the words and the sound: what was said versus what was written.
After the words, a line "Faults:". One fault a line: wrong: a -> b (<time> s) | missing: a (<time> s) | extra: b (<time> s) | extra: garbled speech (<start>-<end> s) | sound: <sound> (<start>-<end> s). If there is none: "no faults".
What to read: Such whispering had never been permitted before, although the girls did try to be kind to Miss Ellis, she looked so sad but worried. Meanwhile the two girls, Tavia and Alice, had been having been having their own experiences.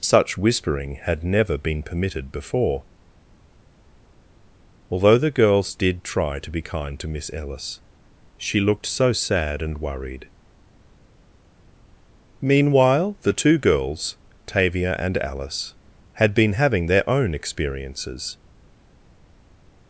Such whispering had never been permitted before, although the girls did try to be kind to Miss Ellis, she looked so sad and worried. Meanwhile the two girls, Tavia and Alice, had been having their own experiences.
Faults:
wrong: but -> and (9.6 s)
missing: been having (16.9 s)